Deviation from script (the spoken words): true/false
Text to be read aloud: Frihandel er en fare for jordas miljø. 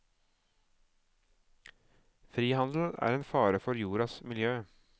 false